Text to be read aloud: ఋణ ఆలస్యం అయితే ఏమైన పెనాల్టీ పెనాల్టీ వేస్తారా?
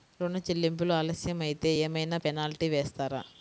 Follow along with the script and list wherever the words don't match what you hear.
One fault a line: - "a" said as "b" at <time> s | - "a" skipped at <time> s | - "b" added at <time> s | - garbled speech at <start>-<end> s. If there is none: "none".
- "చెల్లింపులు" added at 0.4 s
- "పెనాల్టీ" skipped at 2.7 s